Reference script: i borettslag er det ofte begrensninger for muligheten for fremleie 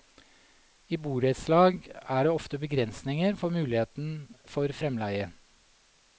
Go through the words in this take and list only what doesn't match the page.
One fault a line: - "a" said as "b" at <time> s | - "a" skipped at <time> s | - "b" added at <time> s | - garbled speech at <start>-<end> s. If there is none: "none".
none